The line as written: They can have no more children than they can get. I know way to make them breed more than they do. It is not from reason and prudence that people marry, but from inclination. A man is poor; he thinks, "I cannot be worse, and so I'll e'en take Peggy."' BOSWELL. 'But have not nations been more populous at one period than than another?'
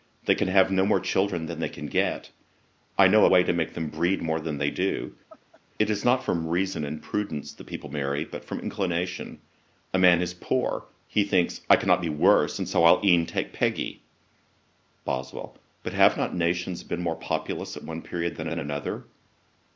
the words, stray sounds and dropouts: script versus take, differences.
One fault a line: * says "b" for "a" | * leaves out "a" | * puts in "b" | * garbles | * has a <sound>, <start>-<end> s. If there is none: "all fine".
* has a laugh, 5.3-5.6 s